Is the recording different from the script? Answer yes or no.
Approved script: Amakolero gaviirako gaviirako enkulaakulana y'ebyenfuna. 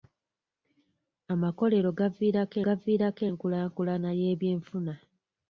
no